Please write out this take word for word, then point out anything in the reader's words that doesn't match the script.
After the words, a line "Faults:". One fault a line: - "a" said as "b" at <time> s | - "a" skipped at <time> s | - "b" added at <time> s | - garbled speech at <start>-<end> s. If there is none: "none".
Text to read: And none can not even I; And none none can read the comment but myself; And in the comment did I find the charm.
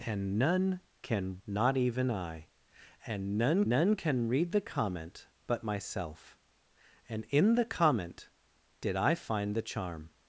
And none can not even I; And none none can read the comment but myself; And in the comment did I find the charm.
Faults:
none